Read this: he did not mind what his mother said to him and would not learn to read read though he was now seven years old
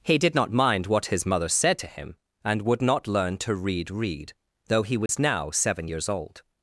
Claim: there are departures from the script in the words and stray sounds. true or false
true